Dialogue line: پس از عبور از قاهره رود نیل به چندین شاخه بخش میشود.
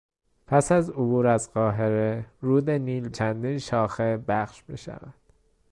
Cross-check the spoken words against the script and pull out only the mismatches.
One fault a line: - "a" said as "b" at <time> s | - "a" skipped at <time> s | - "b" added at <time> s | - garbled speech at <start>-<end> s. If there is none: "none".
- "به" skipped at 3.1 s